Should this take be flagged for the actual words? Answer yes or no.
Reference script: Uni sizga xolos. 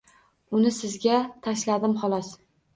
yes